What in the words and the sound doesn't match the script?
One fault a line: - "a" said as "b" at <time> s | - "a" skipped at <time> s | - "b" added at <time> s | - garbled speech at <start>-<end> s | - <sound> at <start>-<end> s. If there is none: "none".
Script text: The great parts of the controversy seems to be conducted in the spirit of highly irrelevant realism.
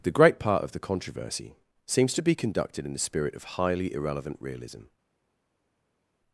- "parts" said as "part" at 0.4 s